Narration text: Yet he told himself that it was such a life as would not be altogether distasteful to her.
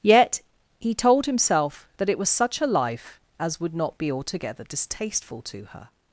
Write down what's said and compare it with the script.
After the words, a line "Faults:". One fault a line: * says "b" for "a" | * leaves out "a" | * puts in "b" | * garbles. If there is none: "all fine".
Yet he told himself that it was such a life as would not be altogether distasteful to her.
Faults:
all fine